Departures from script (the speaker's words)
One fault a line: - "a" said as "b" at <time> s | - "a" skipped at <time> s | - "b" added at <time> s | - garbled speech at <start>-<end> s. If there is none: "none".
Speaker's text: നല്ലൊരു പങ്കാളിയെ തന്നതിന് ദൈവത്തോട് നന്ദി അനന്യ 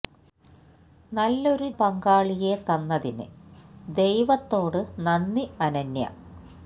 none